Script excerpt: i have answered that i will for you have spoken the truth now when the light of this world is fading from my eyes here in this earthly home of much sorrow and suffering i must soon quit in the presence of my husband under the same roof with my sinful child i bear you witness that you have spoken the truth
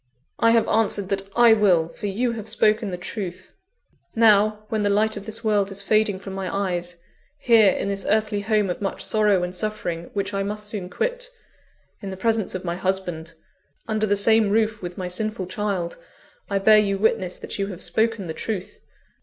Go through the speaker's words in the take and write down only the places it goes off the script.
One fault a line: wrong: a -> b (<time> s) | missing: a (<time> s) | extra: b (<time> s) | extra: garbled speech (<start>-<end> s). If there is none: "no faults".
extra: which (10.1 s)